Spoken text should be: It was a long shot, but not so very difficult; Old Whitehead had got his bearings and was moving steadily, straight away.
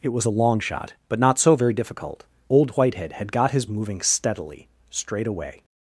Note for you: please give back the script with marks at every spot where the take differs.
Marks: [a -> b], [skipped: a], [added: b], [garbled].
It was a long shot, but not so very difficult; Old Whitehead had got his [skipped: bearings and was] moving steadily, straight away.